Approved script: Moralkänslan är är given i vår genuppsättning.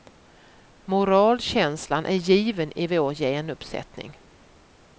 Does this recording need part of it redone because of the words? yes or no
yes